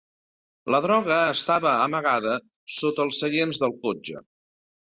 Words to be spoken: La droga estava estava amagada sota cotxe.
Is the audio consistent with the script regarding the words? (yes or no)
no